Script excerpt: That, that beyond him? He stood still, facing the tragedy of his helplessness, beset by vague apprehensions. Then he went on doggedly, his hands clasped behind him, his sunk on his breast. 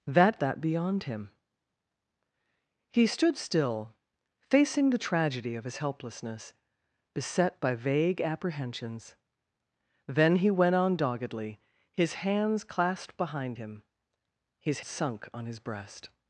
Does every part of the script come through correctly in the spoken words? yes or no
yes